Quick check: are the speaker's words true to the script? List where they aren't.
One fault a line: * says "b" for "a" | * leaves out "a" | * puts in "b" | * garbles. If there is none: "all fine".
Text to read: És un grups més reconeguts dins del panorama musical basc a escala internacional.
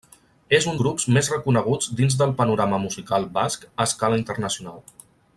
all fine